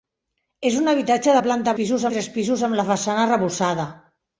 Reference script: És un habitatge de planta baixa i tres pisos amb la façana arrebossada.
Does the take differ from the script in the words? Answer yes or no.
yes